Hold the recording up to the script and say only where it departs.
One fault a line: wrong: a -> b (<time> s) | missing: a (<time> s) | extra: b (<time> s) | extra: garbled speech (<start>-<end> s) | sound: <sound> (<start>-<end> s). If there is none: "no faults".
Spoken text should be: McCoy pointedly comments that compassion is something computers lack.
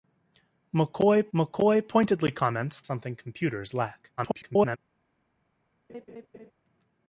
extra: mccoy (1.3 s)
missing: that compassion is (2.8 s)
extra: garbled speech (4.2-4.8 s)
sound: laugh (5.9-6.5 s)